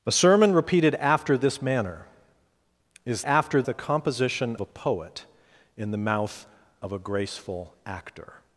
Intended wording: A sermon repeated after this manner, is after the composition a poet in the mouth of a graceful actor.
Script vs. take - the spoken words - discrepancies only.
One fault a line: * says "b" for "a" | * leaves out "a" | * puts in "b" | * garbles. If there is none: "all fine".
all fine